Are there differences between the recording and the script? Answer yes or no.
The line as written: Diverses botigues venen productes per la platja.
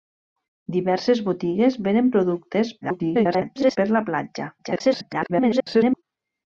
yes